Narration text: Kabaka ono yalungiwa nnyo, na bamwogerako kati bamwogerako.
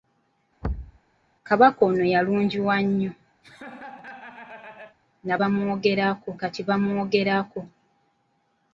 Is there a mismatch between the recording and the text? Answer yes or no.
no